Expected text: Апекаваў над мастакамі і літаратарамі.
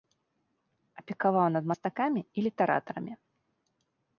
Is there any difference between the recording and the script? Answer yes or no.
no